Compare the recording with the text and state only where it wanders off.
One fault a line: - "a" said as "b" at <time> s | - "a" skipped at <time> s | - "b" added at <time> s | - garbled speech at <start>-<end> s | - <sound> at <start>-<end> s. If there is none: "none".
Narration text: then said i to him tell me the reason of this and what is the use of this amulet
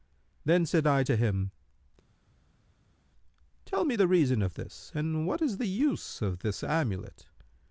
none